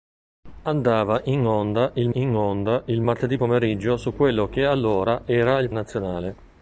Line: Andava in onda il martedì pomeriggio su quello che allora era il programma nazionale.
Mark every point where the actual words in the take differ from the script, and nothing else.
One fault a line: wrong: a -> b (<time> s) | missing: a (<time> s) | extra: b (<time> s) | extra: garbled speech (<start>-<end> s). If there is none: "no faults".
extra: in onda il (2.1 s)
missing: programma (5.7 s)